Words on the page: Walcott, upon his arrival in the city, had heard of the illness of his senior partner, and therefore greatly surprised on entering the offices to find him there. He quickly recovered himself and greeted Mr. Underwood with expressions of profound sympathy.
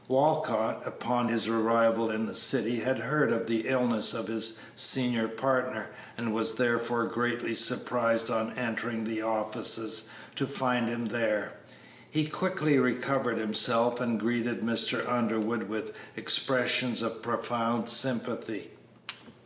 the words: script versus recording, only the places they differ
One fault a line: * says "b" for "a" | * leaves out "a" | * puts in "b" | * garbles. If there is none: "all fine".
* puts in "was"